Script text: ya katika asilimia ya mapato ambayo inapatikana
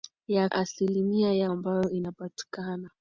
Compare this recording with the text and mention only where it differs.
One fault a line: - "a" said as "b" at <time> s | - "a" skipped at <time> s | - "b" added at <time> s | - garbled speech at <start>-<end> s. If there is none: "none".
- "katika" skipped at 0.5 s
- "mapato" skipped at 1.5 s